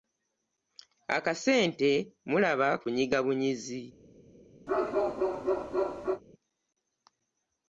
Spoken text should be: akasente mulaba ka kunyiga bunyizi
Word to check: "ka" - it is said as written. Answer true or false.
false